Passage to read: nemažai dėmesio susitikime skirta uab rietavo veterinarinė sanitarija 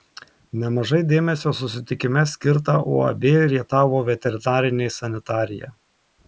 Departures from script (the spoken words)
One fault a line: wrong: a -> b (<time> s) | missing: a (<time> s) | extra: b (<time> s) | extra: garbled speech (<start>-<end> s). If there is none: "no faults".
no faults